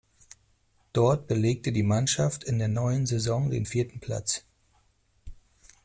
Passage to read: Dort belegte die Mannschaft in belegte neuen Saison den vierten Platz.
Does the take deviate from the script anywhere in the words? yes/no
yes